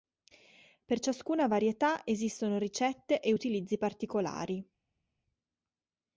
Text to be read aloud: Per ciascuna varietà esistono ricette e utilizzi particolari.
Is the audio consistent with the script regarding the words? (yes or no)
yes